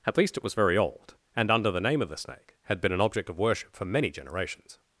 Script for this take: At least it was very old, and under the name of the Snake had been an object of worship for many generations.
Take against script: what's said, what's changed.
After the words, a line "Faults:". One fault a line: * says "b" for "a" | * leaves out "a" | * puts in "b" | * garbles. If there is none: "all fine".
At least it was very old, and under the name of the Snake had been an object of worship for many generations.
Faults:
all fine